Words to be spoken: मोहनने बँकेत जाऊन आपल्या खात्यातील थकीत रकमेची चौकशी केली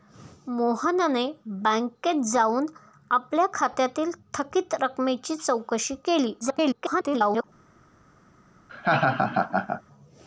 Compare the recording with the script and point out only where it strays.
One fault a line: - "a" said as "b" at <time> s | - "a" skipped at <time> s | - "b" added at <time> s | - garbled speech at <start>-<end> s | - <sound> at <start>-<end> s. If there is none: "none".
- garbled speech at 6.4-7.4 s
- laugh at 8.7-9.8 s